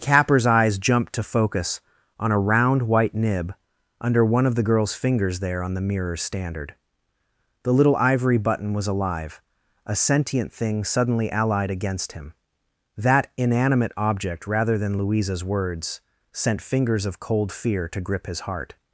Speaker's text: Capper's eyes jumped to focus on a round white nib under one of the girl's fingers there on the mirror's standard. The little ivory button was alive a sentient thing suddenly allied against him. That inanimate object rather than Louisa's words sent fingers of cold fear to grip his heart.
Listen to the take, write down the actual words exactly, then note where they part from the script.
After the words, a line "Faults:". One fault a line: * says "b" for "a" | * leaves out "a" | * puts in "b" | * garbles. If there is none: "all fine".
Capper's eyes jumped to focus on a round white nib under one of the girl's fingers there on the mirror's standard. The little ivory button was alive a sentient thing suddenly allied against him. That inanimate object rather than Louisa's words sent fingers of cold fear to grip his heart.
Faults:
all fine